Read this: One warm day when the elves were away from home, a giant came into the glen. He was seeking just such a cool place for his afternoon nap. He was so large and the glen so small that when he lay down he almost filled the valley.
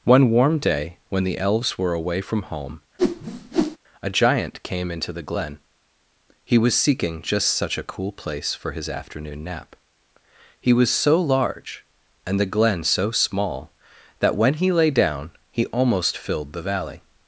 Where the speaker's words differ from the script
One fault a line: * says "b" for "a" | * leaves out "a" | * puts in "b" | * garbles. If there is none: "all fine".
all fine